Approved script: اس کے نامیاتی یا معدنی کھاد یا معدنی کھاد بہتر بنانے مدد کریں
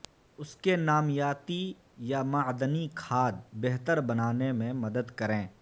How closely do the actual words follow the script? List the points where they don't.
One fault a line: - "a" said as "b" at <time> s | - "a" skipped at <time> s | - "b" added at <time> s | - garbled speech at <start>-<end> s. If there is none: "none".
- "یا معدنی کھاد" skipped at 3.3 s
- "میں" added at 4.5 s